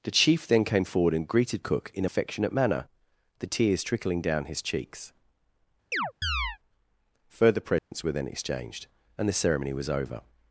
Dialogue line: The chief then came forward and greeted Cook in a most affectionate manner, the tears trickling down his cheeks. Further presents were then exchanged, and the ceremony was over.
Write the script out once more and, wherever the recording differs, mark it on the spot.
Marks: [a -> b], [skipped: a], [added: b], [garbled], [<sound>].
The chief then came forward and greeted Cook in a [skipped: most] affectionate manner, the tears trickling down his cheeks. [chirp] Further presents [dropout] were then exchanged, and the ceremony was over.